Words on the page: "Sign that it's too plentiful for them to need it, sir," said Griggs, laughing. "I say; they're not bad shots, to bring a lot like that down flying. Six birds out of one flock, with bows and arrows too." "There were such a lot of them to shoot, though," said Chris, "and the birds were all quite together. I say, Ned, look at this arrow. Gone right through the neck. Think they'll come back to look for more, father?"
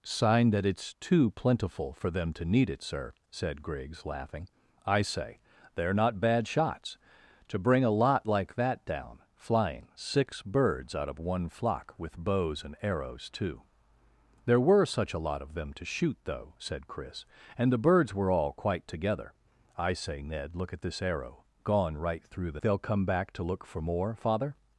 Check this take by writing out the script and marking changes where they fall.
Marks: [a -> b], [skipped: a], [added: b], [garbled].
"Sign that it's too plentiful for them to need it, sir," said Griggs, laughing. "I say; they're not bad shots, to bring a lot like that down flying. Six birds out of one flock, with bows and arrows too." "There were such a lot of them to shoot, though," said Chris, "and the birds were all quite together. I say, Ned, look at this arrow. Gone right through the [skipped: neck. Think] they'll come back to look for more, father?"